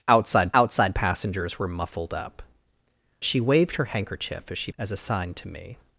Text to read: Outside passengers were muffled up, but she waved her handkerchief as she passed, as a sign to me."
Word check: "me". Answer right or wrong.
right